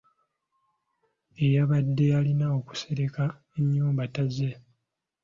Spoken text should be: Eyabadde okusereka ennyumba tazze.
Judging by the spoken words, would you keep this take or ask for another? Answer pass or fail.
fail